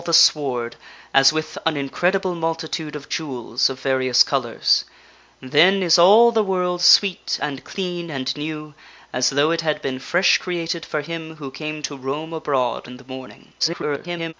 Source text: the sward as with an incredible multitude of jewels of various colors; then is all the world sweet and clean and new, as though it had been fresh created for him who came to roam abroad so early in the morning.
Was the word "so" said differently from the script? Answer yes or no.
yes